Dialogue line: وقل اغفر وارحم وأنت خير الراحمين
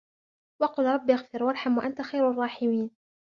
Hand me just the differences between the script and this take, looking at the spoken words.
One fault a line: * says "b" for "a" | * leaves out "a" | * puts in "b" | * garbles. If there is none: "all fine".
* puts in "رب"